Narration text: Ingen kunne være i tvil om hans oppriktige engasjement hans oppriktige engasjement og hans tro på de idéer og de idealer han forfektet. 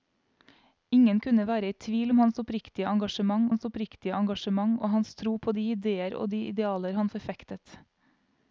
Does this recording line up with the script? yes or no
yes